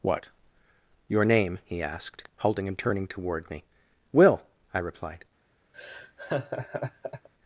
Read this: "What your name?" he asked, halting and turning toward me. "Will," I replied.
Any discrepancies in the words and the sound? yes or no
yes